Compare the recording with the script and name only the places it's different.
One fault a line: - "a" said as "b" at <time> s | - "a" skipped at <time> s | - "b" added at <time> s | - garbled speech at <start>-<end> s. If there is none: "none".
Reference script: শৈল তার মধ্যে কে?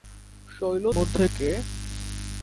- "তার" skipped at 0.8 s